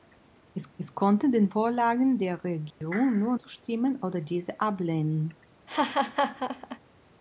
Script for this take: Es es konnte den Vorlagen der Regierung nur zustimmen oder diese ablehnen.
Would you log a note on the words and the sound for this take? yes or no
yes